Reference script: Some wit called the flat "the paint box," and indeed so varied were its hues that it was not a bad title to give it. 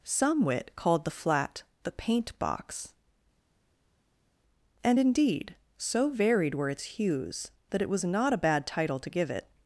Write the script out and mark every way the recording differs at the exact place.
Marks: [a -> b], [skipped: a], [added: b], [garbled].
Some wit called the flat "the paint box," and indeed so varied were its hues that it was not a bad title to give it.